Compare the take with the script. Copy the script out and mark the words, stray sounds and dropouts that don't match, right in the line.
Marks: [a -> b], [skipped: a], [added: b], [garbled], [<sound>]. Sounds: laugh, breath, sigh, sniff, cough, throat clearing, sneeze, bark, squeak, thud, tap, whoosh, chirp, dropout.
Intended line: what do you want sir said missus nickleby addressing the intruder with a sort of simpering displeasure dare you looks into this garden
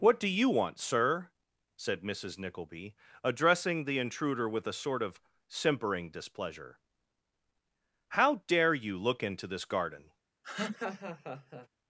what do you want sir said missus nickleby addressing the intruder with a sort of simpering displeasure [added: how] dare you [looks -> look] into this garden [laugh]